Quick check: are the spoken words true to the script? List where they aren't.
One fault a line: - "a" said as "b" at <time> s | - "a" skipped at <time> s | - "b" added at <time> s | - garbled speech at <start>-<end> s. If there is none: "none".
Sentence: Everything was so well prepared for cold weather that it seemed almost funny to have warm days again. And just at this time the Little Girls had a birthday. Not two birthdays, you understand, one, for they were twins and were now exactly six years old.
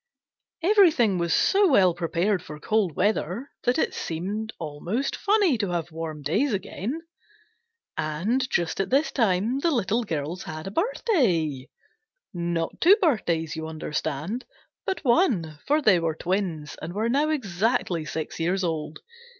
- "but" added at 14.9 s